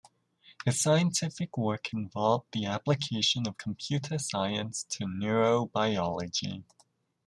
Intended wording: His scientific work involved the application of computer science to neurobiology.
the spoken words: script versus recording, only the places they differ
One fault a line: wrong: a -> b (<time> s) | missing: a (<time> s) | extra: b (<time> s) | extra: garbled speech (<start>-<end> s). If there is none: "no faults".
no faults